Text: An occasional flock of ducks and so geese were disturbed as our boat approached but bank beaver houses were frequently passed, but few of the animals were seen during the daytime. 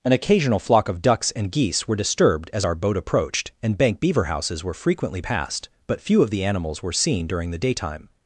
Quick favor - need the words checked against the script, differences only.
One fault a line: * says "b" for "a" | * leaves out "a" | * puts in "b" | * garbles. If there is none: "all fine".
* leaves out "so"
* says "and" for "but"